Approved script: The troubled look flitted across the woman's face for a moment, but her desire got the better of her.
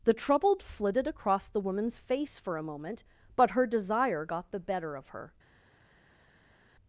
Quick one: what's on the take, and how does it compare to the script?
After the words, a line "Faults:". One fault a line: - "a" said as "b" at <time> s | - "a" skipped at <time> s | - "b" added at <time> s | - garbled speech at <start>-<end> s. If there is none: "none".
The troubled flitted across the woman's face for a moment, but her desire got the better of her.
Faults:
- "look" skipped at 0.6 s